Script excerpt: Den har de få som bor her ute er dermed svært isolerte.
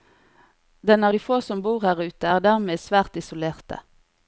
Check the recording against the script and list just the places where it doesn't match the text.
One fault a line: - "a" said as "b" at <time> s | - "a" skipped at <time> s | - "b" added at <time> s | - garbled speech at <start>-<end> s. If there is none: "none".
none